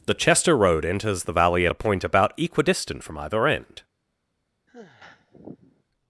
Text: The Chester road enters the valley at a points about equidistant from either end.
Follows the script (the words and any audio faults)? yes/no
no